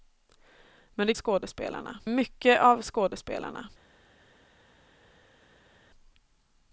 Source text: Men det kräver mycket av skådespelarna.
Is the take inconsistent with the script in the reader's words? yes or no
yes